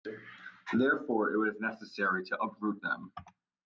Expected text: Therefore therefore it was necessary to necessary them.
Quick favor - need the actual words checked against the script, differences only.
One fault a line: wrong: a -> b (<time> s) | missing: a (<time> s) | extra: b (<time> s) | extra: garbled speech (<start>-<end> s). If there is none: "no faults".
missing: therefore (1.3 s)
wrong: necessary -> uproot (2.4 s)